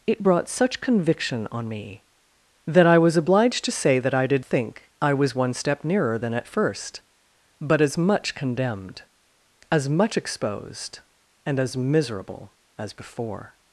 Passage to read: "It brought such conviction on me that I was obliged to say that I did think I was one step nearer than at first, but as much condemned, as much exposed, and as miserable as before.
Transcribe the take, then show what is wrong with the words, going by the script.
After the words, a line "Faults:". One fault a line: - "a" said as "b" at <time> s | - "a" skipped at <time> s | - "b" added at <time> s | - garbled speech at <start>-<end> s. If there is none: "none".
"It brought such conviction on me that I was obliged to say that I did think I was one step nearer than at first, but as much condemned, as much exposed, and as miserable as before.
Faults:
none